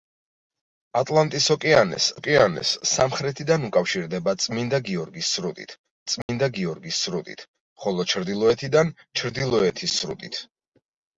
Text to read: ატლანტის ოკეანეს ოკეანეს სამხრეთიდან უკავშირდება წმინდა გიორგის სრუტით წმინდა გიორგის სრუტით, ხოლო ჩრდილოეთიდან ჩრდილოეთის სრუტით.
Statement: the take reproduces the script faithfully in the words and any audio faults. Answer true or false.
false